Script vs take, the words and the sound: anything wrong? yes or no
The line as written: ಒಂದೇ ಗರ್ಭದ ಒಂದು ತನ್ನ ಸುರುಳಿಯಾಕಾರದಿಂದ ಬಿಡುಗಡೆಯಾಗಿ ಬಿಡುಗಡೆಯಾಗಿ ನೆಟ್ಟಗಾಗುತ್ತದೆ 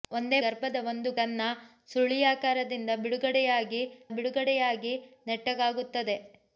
no